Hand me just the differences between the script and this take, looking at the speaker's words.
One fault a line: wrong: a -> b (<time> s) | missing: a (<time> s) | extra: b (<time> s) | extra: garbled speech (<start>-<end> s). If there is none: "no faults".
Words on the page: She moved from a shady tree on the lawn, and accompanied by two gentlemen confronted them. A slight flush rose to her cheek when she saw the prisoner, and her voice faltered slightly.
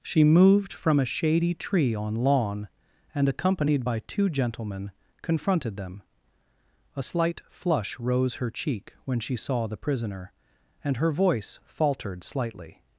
missing: the (2.1 s)
missing: to (8.3 s)